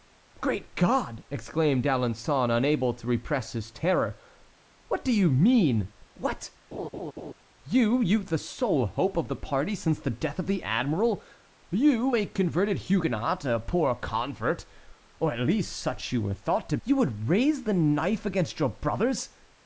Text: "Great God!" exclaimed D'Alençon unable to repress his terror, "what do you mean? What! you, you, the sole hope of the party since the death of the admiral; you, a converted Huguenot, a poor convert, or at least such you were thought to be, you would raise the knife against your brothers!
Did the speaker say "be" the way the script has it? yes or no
no